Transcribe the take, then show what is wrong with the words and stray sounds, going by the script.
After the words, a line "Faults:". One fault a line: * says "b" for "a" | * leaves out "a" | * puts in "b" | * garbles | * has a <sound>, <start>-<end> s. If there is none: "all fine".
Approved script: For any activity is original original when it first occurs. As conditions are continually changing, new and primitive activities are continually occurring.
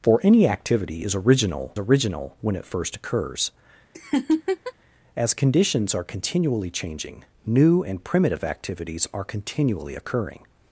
For any activity is original original when it first occurs. As conditions are continually changing, new and primitive activities are continually occurring.
Faults:
* has a laugh, 3.9-4.7 s